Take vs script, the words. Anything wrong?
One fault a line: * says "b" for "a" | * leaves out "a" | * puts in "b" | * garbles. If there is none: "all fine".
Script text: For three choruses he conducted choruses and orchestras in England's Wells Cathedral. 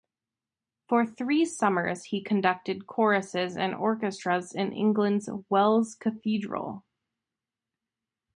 * says "summers" for "choruses"